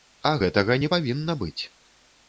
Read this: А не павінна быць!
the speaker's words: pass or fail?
fail